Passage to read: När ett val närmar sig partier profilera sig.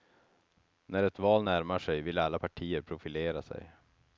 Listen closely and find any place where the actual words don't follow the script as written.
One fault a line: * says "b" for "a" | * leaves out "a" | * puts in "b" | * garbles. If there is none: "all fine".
* puts in "vill alla"